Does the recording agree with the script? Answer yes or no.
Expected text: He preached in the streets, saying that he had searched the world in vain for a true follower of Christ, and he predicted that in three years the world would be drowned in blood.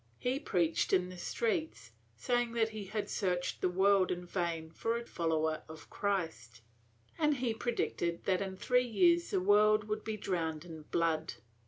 no